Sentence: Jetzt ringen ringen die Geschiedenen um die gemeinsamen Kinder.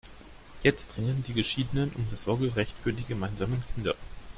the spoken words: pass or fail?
fail